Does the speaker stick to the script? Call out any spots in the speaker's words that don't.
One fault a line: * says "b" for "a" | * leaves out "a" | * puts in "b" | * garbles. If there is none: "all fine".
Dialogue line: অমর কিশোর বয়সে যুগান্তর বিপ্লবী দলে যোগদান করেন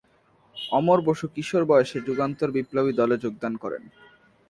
* puts in "বসু"